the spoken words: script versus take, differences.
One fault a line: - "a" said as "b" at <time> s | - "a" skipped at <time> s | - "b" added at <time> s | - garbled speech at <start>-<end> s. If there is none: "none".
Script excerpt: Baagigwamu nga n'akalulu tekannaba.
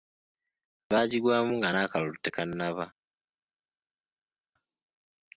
none